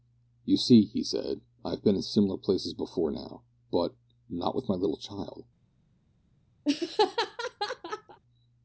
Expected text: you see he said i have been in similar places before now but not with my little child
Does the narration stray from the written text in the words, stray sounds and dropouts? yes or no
yes